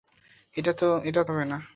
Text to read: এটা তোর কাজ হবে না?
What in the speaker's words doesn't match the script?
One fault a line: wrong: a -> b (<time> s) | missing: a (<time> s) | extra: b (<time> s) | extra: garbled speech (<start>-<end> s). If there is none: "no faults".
missing: তোর কাজ (1.2 s)